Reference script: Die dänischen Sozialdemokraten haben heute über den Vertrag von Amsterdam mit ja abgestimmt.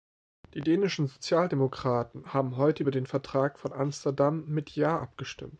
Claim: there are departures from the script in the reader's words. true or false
false